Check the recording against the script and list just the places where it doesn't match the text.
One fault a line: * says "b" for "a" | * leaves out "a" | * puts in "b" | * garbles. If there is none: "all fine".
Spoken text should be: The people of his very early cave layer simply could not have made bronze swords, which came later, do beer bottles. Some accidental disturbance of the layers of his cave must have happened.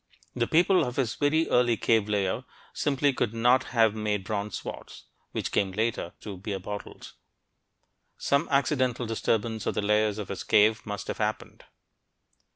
all fine